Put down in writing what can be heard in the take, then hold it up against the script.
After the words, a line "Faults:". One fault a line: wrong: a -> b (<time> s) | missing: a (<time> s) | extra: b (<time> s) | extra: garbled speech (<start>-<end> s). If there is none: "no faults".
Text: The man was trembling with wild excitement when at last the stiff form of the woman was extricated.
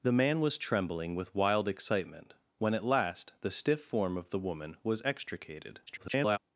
The man was trembling with wild excitement when at last the stiff form of the woman was extricated. [garbled]
Faults:
extra: garbled speech (5.9-6.4 s)